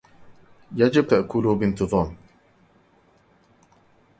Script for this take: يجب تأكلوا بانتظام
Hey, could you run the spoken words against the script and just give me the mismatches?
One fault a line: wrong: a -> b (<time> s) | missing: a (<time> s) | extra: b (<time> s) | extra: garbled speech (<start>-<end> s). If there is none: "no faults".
no faults